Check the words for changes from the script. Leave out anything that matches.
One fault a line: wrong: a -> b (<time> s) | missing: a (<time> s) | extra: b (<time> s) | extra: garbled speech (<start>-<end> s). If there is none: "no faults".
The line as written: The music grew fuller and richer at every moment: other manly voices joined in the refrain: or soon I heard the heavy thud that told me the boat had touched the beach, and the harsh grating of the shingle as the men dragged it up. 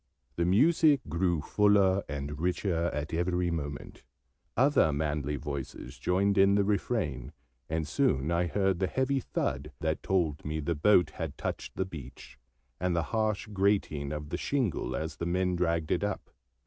wrong: or -> and (7.7 s)